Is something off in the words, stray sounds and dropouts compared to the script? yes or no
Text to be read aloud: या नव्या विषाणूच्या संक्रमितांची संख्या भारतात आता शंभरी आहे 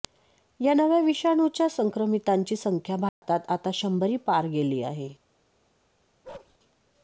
yes